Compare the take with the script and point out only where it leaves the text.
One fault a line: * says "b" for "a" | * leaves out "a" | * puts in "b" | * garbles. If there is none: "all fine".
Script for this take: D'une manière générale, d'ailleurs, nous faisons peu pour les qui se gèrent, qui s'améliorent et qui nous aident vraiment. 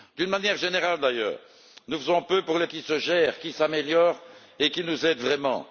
all fine